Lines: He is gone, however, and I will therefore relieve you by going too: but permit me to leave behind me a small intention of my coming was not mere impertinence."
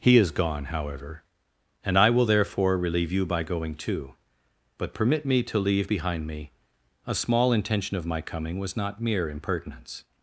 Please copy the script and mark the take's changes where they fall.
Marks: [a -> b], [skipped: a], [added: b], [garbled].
He is gone, however, and I will therefore relieve you by going too: but permit me to leave behind me a small intention of my coming was not mere impertinence."